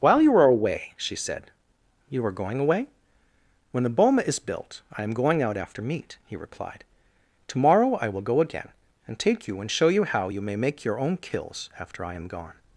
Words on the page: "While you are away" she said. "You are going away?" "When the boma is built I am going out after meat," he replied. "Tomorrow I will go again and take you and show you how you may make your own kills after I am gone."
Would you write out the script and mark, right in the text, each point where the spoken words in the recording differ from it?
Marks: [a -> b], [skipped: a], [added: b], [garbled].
"While you are away" she said. "You are going away?" "When the boma is built I am going out after meat," he replied. "Tomorrow I will go again and take you and show you how you may make your own kills after I am gone."